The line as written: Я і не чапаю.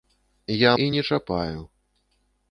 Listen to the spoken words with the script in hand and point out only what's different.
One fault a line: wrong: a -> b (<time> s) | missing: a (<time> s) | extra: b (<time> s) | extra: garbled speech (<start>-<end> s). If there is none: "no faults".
no faults